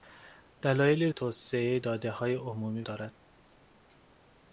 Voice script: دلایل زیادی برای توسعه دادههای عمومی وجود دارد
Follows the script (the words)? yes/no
no